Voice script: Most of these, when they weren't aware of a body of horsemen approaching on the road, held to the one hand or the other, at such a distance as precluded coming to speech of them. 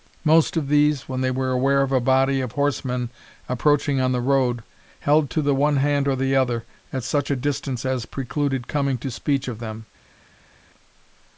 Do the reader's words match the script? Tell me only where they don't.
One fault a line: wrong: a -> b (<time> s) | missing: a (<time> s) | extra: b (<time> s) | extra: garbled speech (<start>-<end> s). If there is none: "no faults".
wrong: weren't -> were (1.3 s)